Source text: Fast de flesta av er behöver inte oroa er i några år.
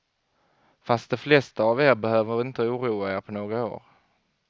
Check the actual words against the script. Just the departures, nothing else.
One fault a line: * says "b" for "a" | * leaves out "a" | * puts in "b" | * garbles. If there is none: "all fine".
* says "på" for "i"